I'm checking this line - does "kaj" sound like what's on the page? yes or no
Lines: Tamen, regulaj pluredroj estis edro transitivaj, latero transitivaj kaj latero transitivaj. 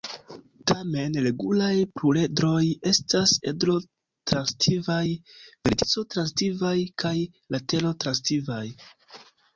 yes